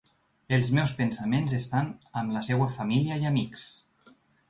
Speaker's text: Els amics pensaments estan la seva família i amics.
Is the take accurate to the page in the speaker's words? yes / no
no